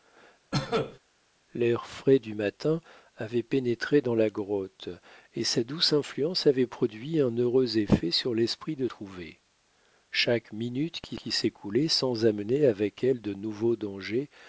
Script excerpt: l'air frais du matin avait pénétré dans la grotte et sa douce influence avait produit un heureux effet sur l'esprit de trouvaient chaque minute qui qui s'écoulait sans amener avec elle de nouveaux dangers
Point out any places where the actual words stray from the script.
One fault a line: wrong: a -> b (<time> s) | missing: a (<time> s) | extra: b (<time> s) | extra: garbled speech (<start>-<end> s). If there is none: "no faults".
no faults